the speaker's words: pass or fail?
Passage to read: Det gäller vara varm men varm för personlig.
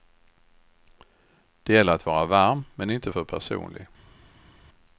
fail